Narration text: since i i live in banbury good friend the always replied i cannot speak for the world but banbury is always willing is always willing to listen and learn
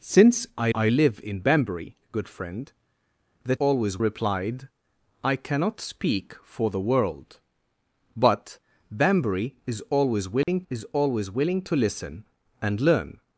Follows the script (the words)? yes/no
yes